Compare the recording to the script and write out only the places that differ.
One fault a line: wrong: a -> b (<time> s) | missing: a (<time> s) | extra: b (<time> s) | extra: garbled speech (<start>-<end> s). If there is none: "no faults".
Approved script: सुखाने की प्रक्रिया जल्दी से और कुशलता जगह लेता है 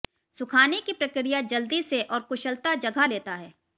no faults